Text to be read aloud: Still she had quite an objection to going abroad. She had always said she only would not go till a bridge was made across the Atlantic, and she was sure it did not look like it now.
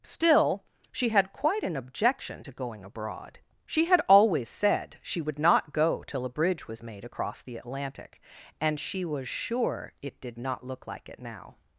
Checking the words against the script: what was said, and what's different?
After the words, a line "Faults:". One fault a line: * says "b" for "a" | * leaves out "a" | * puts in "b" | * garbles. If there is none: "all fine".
Still she had quite an objection to going abroad. She had always said she would not go till a bridge was made across the Atlantic, and she was sure it did not look like it now.
Faults:
* leaves out "only"